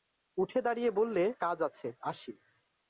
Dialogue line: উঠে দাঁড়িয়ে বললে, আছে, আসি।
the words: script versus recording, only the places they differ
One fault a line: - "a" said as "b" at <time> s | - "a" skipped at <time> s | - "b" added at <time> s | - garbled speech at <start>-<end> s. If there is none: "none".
- "কাজ" added at 1.4 s